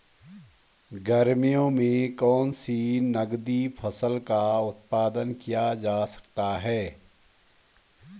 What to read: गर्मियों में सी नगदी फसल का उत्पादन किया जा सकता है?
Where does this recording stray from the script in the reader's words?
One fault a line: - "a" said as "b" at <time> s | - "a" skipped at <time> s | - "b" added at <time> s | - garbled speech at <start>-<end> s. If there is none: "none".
- "कौन" added at 2.1 s